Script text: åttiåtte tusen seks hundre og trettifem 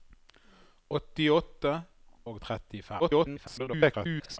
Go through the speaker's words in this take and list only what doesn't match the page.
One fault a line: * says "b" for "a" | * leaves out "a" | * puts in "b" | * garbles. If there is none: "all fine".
* leaves out "tusen seks hundre"
* garbles